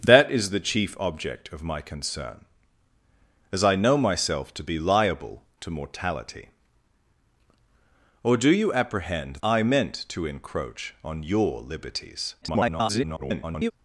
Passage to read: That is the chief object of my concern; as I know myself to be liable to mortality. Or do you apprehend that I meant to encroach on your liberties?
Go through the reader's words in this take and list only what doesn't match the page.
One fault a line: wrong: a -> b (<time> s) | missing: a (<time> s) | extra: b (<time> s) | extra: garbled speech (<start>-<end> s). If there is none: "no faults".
missing: that (9.4 s)
extra: garbled speech (12.4-13.7 s)